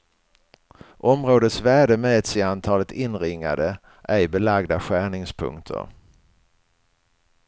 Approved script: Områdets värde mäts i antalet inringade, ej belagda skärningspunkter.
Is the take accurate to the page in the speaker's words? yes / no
yes